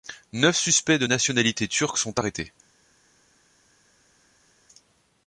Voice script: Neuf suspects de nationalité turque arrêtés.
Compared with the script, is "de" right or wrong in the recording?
right